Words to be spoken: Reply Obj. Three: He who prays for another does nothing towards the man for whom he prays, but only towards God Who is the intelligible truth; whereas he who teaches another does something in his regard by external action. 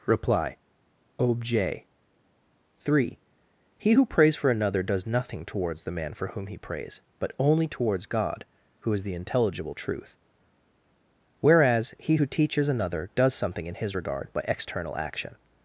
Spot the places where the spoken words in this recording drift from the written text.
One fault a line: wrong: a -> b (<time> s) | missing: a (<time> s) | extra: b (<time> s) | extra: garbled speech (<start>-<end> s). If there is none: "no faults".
no faults